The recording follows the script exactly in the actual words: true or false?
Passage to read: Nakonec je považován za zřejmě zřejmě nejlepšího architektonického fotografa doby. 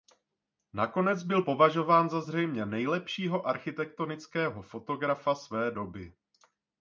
false